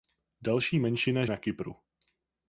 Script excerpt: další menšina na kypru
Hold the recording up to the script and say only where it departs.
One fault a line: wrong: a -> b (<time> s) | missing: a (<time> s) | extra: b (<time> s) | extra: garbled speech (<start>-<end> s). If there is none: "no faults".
no faults